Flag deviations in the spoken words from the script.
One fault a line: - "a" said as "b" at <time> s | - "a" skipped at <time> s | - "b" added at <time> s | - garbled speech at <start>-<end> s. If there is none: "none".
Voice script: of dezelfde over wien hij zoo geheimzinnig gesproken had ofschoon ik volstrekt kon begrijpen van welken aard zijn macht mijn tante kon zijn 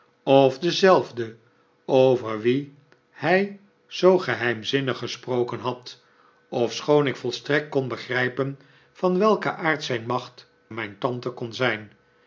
none